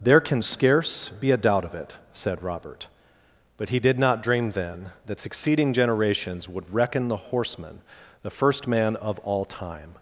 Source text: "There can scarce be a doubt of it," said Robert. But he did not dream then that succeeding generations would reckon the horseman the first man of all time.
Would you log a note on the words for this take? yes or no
no